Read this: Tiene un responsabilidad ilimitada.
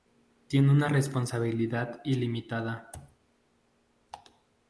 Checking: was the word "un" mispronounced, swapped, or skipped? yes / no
yes